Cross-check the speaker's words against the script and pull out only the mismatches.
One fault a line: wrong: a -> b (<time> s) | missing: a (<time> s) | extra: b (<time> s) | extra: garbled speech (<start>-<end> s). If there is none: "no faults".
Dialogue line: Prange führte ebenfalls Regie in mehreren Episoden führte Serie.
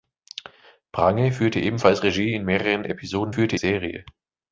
no faults